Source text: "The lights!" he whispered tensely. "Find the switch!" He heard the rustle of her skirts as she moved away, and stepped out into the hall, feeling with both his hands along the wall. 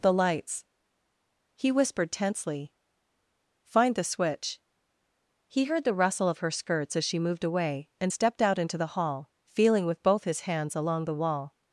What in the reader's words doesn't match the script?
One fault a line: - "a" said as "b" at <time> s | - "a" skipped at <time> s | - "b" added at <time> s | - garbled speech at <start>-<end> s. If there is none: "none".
none